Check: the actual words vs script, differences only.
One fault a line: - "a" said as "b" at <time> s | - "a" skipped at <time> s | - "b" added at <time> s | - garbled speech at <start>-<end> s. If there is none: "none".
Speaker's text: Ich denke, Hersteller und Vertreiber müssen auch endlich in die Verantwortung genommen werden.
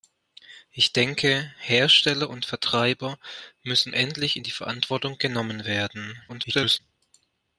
- "auch" skipped at 3.9 s
- garbled speech at 6.3-6.8 s